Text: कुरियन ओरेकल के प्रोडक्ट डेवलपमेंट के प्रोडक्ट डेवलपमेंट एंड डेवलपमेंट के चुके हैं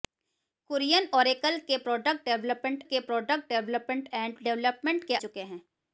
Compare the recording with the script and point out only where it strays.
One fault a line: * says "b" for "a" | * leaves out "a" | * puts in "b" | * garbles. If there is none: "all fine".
all fine